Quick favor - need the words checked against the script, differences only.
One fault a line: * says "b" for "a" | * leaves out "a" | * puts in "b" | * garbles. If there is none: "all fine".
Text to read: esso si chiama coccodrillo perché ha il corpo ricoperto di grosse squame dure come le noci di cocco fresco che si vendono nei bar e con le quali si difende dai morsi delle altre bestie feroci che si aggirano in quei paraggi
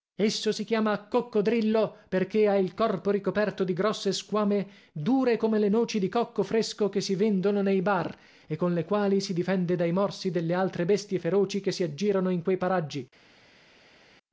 all fine